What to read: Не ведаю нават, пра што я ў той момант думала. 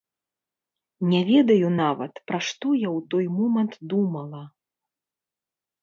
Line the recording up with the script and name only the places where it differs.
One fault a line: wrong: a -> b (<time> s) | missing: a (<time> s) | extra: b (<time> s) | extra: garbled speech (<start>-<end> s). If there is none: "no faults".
no faults